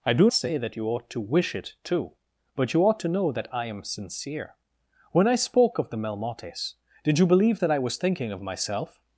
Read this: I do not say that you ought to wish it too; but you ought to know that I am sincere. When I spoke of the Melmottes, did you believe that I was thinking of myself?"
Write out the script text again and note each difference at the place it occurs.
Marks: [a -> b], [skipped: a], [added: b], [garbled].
I do [skipped: not] say that you ought to wish it too; but you ought to know that I am sincere. When I spoke of the Melmottes, did you believe that I was thinking of myself?"